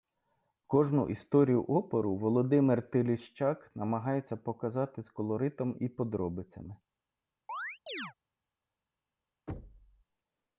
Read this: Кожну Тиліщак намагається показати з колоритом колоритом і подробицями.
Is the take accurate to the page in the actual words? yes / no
no